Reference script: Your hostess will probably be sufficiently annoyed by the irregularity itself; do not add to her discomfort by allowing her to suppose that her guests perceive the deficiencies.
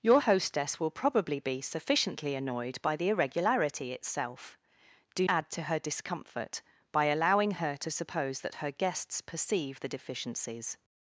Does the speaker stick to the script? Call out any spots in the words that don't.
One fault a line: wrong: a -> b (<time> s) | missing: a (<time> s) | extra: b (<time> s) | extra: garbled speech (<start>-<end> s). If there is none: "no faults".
missing: not (5.3 s)